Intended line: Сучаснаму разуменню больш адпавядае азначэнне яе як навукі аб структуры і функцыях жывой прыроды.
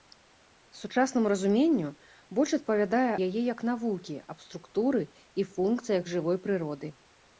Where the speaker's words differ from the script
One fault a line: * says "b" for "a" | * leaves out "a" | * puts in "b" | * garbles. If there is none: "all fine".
* leaves out "азначэнне"